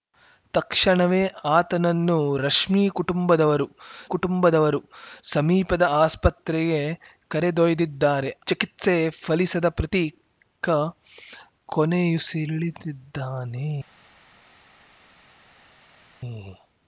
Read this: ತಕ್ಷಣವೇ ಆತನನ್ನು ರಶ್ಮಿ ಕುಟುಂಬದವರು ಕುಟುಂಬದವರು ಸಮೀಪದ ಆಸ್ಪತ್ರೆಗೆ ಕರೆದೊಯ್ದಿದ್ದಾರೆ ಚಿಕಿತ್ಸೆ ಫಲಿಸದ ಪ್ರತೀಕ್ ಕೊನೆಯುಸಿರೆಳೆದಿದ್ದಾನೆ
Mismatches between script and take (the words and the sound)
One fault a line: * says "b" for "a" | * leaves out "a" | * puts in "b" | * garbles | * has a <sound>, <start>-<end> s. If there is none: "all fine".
all fine